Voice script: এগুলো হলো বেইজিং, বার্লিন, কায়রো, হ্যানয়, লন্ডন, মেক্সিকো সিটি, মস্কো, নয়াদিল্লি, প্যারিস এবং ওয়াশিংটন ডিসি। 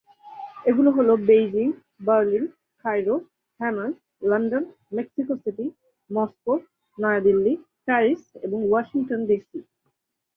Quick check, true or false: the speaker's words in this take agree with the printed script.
true